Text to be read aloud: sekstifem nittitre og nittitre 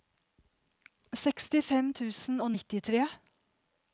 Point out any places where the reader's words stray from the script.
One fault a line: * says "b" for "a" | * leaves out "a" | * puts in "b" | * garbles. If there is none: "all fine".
* says "tusen" for "nittitre"